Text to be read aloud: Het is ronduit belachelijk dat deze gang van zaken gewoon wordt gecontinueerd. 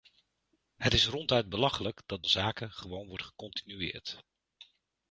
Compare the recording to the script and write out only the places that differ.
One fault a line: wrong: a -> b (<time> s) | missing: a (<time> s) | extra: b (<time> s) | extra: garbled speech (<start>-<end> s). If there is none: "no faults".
missing: deze gang van (2.2 s)